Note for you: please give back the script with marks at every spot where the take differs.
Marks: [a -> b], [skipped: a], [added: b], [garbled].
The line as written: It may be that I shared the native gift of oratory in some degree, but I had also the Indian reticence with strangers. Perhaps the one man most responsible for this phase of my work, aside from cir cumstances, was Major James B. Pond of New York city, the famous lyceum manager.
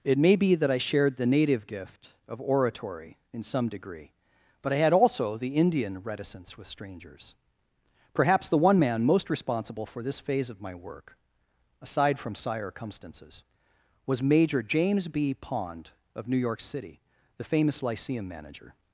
It may be that I shared the native gift of oratory in some degree, but I had also the Indian reticence with strangers. Perhaps the one man most responsible for this phase of my work, aside from [cir -> sire] cumstances, was Major James B. Pond of New York city, the famous lyceum manager.